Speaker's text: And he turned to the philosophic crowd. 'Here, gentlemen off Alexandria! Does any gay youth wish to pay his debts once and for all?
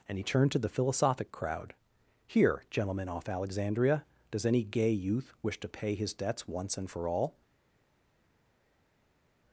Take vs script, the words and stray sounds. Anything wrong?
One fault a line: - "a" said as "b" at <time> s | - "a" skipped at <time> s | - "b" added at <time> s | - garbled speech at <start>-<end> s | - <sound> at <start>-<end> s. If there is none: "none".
none